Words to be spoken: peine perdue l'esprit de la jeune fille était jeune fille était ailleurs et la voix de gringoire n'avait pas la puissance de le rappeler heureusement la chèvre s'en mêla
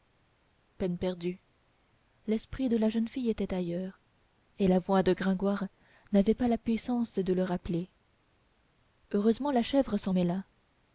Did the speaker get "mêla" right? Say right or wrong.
right